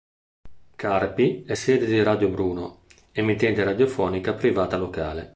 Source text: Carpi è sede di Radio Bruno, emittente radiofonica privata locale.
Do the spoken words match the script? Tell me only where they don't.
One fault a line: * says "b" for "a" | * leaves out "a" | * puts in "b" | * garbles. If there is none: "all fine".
all fine